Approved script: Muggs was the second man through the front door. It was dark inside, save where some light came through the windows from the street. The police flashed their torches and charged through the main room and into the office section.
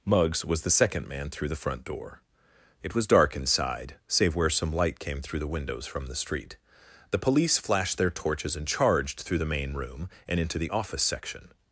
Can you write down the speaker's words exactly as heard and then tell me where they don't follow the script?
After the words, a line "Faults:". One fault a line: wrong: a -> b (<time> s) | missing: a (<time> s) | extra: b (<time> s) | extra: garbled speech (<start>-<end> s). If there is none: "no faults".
Muggs was the second man through the front door. It was dark inside, save where some light came through the windows from the street. The police flashed their torches and charged through the main room and into the office section.
Faults:
no faults